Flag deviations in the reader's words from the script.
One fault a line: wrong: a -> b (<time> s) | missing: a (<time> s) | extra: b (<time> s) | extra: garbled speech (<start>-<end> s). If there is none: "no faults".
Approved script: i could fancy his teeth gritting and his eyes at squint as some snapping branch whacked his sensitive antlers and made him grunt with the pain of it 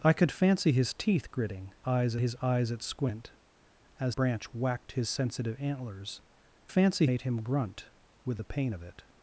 wrong: and -> eyes (1.9 s)
missing: some snapping (4.2 s)
wrong: and -> fancy (6.7 s)